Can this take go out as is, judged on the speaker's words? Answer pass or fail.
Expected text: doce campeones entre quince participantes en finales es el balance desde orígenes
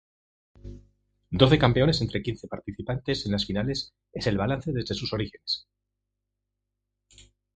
fail